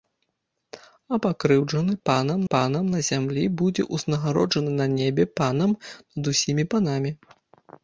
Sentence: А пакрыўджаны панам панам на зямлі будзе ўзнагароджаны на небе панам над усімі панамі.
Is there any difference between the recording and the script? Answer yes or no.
no